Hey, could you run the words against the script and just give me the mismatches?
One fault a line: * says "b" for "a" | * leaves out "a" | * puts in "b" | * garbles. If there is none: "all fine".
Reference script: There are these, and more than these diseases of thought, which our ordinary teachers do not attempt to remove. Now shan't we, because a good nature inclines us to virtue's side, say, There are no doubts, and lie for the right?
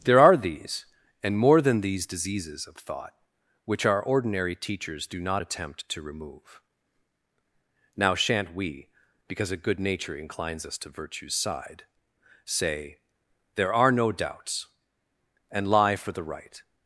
all fine